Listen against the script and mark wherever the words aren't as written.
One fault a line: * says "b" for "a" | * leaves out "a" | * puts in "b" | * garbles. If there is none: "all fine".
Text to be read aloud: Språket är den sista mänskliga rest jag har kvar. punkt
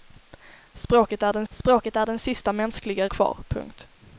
* says "språket är den sista mänskliga" for "sista mänskliga rest jag har"